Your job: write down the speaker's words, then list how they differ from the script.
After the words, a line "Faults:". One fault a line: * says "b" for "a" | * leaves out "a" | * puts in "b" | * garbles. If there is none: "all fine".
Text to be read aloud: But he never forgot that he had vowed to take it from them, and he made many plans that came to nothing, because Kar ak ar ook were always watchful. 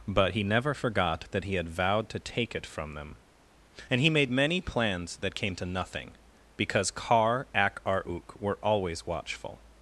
But he never forgot that he had vowed to take it from them, and he made many plans that came to nothing, because Kar ak ar ook were always watchful.
Faults:
all fine